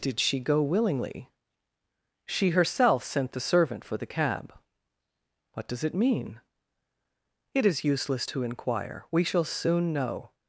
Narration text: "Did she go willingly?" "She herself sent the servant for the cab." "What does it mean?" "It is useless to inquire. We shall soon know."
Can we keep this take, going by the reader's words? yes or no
yes